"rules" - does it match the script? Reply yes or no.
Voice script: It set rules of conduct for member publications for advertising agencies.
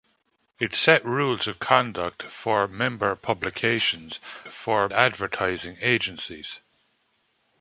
yes